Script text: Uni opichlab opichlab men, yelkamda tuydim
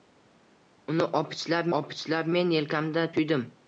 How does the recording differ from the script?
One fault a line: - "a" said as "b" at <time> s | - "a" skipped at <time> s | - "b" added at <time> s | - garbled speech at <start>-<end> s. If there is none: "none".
none